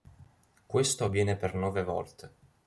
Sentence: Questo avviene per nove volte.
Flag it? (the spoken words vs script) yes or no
no